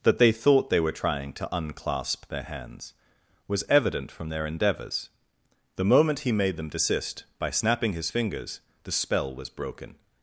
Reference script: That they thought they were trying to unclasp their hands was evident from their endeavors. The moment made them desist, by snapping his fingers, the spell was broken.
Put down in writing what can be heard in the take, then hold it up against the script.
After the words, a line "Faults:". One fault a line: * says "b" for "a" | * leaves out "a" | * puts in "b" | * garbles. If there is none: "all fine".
That they thought they were trying to unclasp their hands was evident from their endeavors. The moment he made them desist, by snapping his fingers, the spell was broken.
Faults:
* puts in "he"